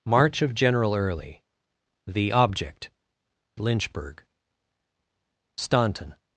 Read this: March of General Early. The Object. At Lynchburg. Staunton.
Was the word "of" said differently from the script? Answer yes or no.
no